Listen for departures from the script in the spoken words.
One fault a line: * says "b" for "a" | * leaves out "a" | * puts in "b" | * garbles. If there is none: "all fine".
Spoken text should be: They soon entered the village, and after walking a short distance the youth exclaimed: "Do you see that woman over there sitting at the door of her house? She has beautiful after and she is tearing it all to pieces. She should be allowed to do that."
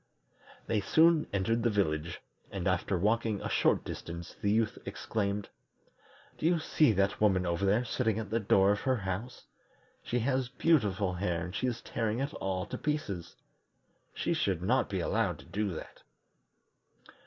* says "hair" for "after"
* puts in "not"